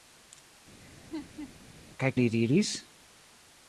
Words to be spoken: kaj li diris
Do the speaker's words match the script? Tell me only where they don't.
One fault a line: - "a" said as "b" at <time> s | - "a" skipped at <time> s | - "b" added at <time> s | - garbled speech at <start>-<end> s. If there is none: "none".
none